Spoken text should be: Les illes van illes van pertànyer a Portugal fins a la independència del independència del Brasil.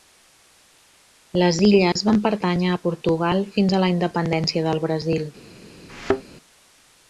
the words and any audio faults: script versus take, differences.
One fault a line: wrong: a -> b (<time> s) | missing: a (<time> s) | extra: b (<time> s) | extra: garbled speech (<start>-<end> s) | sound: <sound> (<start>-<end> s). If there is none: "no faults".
sound: dropout (1.9-2.0 s)
missing: illes van (2.2 s)
missing: independència del (4.8 s)
sound: thud (5.9-6.2 s)